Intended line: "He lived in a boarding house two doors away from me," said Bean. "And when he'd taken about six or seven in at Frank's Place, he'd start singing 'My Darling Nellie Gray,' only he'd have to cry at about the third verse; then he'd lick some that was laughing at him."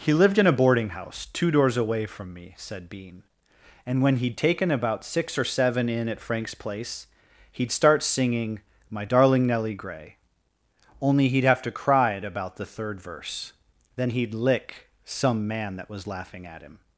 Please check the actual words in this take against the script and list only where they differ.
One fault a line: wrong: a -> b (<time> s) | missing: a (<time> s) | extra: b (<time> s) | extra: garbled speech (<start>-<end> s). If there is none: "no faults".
extra: man (15.5 s)